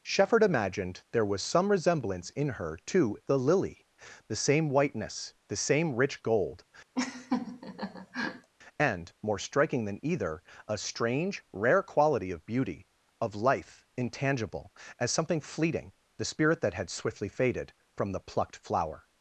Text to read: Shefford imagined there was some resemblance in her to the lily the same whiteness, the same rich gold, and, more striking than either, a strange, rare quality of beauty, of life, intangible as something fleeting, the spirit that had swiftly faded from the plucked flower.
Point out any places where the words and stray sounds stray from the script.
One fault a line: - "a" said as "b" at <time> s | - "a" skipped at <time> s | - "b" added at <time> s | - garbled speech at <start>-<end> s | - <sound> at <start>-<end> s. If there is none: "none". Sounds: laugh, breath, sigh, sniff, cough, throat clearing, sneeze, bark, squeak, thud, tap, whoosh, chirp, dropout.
- laugh at 6.9-8.5 s